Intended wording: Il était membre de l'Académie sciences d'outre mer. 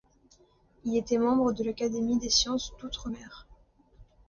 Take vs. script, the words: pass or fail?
fail